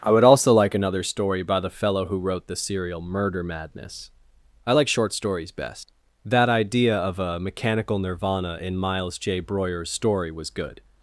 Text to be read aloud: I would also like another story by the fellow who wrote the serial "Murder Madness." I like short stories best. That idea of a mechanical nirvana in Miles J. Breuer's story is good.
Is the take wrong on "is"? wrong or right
wrong